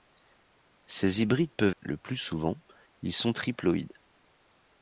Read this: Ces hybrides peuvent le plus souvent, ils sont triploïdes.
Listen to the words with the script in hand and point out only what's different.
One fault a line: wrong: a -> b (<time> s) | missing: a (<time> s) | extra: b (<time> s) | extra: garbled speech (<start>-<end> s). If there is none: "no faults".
no faults